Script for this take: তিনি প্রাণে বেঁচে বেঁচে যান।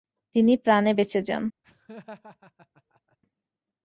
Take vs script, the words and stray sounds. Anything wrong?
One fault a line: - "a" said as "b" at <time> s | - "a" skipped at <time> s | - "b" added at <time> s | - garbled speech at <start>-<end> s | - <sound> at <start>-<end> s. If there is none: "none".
- "বেঁচে" skipped at 1.2 s
- laugh at 1.6-3.2 s